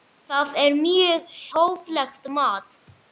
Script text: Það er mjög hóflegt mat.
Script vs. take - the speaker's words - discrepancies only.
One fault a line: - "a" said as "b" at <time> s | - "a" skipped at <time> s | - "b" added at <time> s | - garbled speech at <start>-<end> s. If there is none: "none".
none